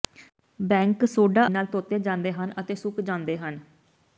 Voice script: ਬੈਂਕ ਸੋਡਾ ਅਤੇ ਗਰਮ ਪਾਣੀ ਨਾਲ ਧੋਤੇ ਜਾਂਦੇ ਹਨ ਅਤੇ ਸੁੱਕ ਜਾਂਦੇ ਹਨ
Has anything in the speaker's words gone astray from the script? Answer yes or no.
yes